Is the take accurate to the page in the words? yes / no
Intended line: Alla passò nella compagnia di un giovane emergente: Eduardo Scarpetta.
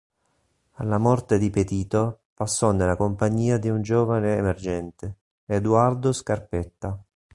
no